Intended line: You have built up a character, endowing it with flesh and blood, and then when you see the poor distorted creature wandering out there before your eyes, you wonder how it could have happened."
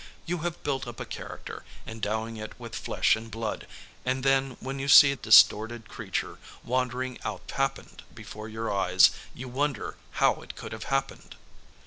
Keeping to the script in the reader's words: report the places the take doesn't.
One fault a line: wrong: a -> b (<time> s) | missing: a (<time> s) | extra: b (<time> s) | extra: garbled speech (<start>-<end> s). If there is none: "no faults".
missing: the poor (5.1 s)
wrong: there -> happened (7.5 s)